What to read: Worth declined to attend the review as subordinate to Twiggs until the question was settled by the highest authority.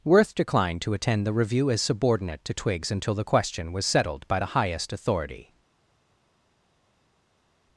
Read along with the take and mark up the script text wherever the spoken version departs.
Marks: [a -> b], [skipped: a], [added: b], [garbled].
Worth declined to attend the review as subordinate to Twiggs until the question was settled by the highest authority.